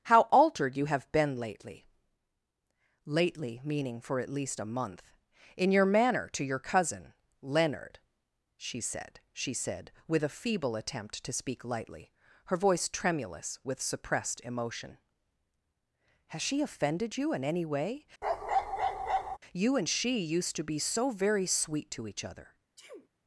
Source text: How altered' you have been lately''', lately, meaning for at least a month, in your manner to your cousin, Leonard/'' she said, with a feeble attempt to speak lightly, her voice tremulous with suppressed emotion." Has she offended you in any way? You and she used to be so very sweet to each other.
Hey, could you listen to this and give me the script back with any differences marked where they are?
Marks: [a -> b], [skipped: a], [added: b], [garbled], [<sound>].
How altered' you have been lately''', lately, meaning for at least a month, in your manner to your cousin, Leonard/'' she said, [added: she said] with a feeble attempt to speak lightly, her voice tremulous with suppressed emotion." Has she offended you in any way? [bark] You and she used to be so very sweet to each other. [sneeze]